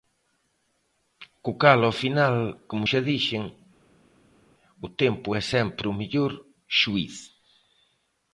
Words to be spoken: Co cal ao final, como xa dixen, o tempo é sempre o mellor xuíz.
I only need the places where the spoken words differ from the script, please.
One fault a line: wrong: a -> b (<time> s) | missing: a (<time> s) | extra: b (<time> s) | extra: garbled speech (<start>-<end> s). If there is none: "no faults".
no faults